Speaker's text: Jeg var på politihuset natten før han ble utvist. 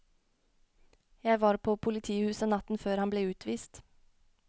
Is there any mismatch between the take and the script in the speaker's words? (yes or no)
no